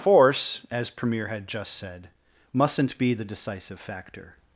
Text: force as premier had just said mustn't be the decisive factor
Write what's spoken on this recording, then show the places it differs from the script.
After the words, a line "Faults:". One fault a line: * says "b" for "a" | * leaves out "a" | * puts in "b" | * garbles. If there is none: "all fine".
force as premier had just said mustn't be the decisive factor
Faults:
all fine